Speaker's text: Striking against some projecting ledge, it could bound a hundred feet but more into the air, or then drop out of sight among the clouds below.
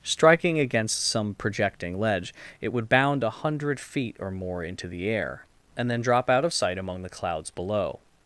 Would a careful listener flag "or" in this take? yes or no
yes